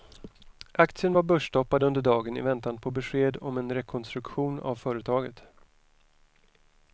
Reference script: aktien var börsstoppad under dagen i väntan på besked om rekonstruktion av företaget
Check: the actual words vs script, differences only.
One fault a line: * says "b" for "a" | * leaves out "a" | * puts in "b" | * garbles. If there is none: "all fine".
* puts in "en"